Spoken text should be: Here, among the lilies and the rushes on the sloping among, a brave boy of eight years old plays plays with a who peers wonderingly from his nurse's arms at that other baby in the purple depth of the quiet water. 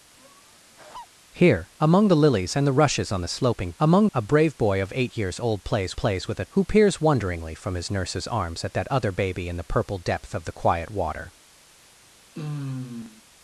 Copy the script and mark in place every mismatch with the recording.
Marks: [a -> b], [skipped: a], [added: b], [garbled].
Here, among the lilies and the rushes on the sloping among, a brave boy of eight years old plays plays with a who peers wonderingly from his nurse's arms at that other baby in the purple depth of the quiet water.